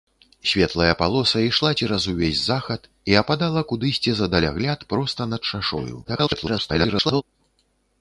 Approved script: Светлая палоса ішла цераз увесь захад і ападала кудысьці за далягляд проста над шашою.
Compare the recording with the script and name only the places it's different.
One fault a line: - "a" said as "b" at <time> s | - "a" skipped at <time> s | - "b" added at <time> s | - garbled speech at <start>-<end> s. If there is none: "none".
- garbled speech at 6.0-7.2 s